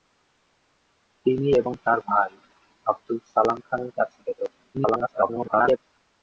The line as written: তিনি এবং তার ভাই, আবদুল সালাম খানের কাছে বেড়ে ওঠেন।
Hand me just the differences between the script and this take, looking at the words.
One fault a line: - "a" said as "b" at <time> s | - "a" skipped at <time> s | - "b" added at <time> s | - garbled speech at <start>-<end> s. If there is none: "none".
- garbled speech at 4.7-5.8 s